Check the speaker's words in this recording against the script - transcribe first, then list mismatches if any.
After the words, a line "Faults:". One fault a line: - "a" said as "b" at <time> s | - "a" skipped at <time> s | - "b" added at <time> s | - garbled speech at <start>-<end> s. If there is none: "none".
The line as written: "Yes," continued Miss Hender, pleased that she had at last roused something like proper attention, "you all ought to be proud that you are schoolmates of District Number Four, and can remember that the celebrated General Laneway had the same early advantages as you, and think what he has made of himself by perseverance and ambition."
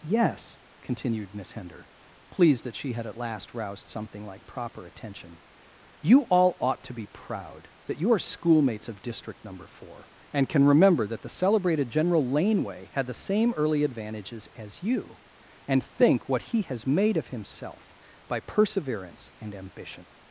"Yes," continued Miss Hender, pleased that she had at last roused something like proper attention, "you all ought to be proud that you are schoolmates of District Number Four, and can remember that the celebrated General Laneway had the same early advantages as you, and think what he has made of himself by perseverance and ambition."
Faults:
none